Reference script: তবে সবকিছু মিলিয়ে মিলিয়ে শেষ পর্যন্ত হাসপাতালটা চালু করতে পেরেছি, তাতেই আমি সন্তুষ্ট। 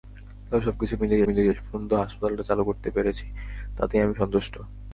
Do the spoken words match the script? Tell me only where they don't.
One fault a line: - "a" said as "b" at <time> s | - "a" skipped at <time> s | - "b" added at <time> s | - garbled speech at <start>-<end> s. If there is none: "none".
none